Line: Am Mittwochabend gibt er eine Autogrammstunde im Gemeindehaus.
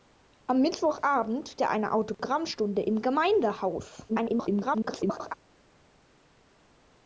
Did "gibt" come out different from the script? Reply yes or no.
yes